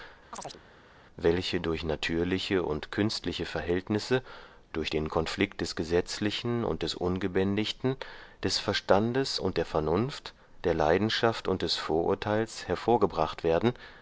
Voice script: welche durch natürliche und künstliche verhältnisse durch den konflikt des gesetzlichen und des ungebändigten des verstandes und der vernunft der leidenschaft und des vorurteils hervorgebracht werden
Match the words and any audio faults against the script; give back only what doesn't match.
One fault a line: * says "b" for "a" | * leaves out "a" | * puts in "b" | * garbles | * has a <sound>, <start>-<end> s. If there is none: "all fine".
* has a chirp, 0.3-0.6 s